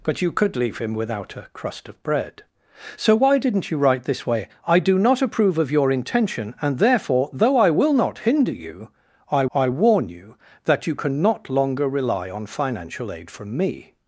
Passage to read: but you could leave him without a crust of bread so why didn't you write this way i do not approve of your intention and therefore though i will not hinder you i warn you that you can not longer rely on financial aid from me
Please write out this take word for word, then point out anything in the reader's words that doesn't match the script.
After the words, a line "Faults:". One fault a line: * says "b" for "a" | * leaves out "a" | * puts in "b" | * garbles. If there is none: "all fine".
but you could leave him without a crust of bread so why didn't you write this way i do not approve of your intention and therefore though i will not hinder you i i warn you that you can not longer rely on financial aid from me
Faults:
* puts in "i"